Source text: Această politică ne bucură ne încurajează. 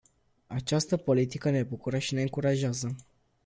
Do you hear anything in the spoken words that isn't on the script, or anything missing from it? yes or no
yes